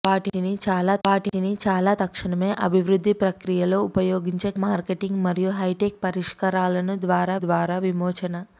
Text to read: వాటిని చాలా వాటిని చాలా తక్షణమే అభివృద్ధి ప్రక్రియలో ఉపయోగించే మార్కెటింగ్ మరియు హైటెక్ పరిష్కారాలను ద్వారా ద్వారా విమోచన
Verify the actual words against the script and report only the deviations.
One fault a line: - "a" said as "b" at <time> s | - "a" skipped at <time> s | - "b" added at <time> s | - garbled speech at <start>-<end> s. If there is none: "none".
none